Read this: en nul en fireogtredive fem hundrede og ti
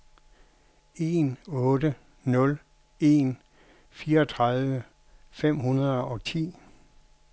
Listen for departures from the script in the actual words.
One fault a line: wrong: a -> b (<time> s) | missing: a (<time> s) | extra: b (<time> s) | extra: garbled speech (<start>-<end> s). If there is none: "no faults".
extra: otte (1.5 s)